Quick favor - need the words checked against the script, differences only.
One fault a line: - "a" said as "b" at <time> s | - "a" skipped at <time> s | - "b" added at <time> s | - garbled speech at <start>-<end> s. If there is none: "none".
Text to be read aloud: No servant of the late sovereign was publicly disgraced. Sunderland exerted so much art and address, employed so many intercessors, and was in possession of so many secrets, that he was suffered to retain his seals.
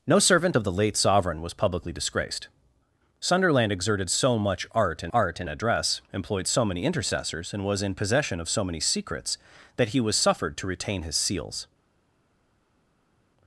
- "art and" added at 5.1 s